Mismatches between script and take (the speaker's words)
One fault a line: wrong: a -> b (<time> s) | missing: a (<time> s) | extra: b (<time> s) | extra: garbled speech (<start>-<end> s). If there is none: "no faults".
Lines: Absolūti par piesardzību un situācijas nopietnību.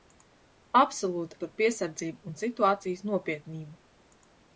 no faults